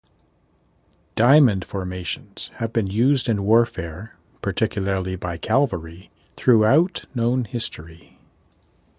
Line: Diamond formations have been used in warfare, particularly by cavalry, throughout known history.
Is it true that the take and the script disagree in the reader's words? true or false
false